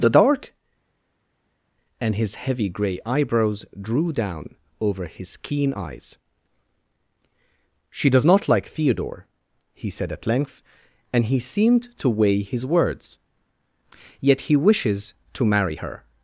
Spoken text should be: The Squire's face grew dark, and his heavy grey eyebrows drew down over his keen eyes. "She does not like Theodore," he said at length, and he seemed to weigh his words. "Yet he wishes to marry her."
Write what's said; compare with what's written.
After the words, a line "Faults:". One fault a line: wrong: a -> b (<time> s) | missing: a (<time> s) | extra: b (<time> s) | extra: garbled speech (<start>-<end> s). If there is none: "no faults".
The dark, and his heavy grey eyebrows drew down over his keen eyes. "She does not like Theodore," he said at length, and he seemed to weigh his words. "Yet he wishes to marry her."
Faults:
missing: Squire's face grew (0.1 s)